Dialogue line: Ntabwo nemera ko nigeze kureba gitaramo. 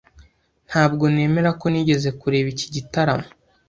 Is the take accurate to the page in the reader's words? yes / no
no